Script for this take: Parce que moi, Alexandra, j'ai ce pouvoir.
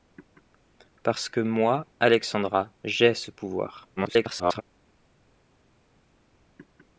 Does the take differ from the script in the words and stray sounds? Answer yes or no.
yes